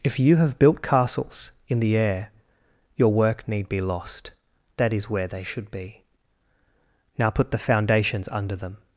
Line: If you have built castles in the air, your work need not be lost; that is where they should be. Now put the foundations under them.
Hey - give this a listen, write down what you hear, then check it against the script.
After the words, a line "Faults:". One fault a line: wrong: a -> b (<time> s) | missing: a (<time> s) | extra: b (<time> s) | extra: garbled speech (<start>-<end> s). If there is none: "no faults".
If you have built castles in the air, your work need be lost; that is where they should be. Now put the foundations under them.
Faults:
missing: not (3.7 s)